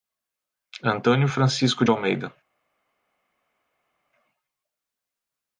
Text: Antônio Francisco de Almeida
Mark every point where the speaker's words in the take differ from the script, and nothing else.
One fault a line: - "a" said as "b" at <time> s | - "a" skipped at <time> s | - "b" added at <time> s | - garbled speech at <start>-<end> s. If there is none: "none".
none